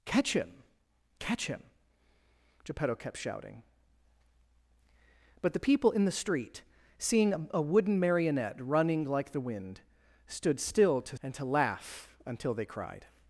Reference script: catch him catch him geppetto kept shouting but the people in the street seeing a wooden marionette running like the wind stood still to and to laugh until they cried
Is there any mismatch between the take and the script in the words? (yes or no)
no